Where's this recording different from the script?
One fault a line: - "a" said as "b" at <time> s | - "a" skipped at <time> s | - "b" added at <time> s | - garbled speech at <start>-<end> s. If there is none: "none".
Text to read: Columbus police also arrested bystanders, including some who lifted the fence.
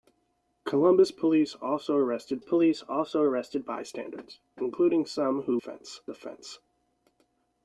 - "police also arrested" added at 2.4 s
- "lifted" said as "fence" at 5.5 s